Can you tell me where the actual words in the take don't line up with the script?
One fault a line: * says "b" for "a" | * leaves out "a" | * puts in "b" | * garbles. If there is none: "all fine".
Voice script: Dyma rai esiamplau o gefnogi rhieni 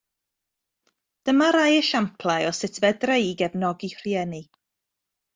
* puts in "sut fedra i"